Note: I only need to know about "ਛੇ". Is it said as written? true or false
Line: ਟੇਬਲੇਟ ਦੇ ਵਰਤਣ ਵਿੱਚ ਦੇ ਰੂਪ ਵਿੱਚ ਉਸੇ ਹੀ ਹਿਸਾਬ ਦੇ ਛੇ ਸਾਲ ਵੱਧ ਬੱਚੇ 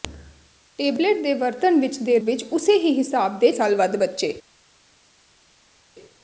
false